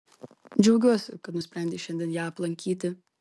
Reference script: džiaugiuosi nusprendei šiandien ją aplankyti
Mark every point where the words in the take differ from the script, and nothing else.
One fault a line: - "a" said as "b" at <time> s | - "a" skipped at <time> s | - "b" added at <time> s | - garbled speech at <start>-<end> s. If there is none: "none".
- "kad" added at 1.3 s